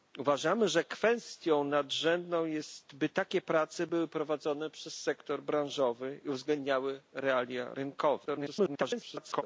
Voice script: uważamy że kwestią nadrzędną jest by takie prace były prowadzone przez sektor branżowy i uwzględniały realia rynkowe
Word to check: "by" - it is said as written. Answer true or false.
true